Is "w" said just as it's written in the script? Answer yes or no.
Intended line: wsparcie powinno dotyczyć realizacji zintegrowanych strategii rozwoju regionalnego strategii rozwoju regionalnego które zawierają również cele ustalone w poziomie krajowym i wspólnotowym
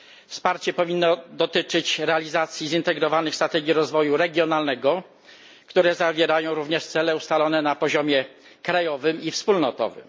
no